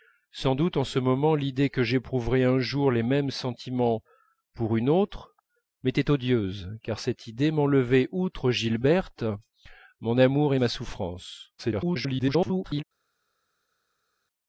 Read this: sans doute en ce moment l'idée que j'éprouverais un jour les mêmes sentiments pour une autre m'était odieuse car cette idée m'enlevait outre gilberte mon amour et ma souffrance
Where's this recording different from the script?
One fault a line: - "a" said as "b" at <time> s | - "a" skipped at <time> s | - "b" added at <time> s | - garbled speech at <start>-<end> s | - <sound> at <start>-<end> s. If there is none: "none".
- garbled speech at 11.6-12.8 s